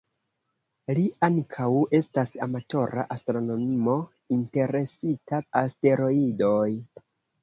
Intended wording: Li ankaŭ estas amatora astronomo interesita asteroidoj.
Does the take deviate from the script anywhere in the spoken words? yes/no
no